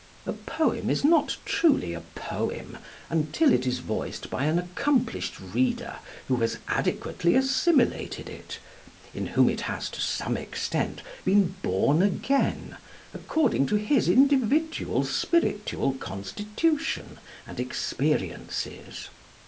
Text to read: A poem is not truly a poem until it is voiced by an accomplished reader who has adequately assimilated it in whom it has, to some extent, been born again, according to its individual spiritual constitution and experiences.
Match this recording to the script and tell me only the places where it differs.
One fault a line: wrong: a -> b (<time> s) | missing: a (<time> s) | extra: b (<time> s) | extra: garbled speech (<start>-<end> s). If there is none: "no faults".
wrong: its -> his (13.8 s)